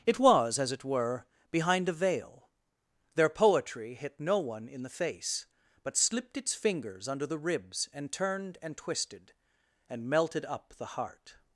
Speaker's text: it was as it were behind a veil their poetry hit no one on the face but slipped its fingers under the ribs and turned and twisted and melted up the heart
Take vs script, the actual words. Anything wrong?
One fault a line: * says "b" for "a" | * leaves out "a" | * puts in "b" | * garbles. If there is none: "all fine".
* says "in" for "on"